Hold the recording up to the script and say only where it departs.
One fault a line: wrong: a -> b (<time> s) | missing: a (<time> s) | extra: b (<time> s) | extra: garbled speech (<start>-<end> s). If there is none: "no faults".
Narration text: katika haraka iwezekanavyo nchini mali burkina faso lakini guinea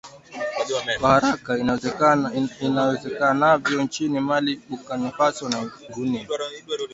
wrong: katika -> kwa (1.0 s)
wrong: lakini -> na (5.5 s)